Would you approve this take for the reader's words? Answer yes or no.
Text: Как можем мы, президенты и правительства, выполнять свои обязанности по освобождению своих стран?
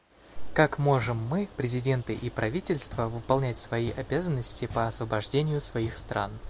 yes